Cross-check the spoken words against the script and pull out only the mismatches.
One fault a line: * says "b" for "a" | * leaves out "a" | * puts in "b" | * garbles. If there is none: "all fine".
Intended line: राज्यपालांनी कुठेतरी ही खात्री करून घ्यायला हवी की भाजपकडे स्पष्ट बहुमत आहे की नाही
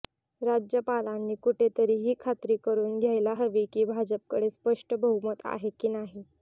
all fine